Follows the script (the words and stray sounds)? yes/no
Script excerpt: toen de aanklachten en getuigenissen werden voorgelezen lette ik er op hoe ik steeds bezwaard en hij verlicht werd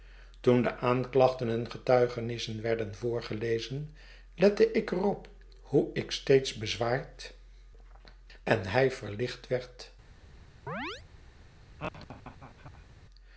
no